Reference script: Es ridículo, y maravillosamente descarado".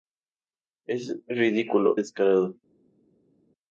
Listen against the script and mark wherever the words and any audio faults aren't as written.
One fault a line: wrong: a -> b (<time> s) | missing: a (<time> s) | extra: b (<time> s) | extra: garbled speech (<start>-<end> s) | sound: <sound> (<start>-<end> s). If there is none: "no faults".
missing: y maravillosamente (2.0 s)